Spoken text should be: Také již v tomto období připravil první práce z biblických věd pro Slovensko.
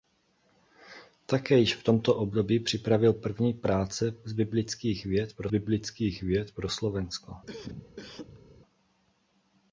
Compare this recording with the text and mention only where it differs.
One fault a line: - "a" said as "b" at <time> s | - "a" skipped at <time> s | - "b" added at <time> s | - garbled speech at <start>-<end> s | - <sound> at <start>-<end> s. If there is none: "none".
- "biblických věd pro" added at 5.5 s
- cough at 7.5-8.4 s